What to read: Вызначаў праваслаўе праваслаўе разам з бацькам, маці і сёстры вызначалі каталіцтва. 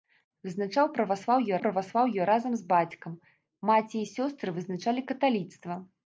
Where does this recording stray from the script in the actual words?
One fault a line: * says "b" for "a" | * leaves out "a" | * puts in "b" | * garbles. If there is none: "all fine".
all fine